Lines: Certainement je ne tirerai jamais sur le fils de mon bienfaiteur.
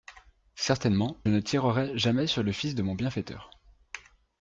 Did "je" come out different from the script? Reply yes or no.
yes